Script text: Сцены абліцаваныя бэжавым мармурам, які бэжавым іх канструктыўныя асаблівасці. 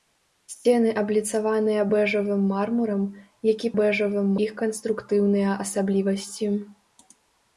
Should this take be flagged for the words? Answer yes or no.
no